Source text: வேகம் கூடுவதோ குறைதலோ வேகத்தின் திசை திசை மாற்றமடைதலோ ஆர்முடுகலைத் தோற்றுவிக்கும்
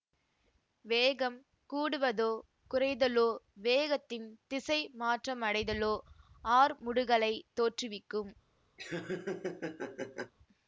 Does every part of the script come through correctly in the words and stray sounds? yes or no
no